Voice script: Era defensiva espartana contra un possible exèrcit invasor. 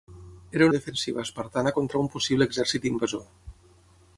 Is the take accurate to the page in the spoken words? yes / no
yes